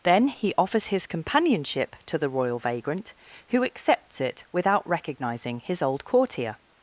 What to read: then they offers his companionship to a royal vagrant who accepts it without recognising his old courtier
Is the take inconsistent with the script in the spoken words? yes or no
yes